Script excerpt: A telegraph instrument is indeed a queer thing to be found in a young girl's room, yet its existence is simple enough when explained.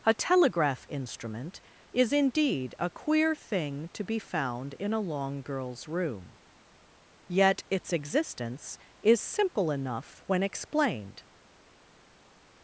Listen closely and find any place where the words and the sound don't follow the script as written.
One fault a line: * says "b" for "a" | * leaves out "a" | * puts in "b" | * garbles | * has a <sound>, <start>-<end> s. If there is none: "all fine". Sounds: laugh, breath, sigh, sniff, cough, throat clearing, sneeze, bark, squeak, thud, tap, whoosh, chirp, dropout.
* says "long" for "young"